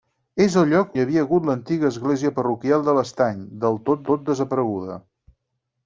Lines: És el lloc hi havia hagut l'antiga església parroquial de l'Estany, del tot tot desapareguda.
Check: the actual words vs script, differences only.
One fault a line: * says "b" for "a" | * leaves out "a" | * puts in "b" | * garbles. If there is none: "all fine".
all fine